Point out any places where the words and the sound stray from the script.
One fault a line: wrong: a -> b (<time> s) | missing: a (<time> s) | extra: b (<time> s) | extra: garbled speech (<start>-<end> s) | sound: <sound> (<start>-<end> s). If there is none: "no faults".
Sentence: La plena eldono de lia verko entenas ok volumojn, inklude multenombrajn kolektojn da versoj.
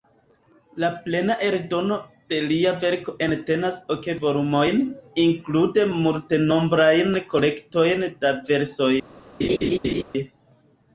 sound: laugh (9.4-10.0 s)